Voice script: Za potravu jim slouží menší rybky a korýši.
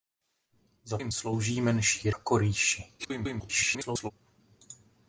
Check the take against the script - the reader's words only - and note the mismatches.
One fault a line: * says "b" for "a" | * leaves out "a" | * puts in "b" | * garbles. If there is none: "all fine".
* leaves out "potravu"
* leaves out "rybky"
* garbles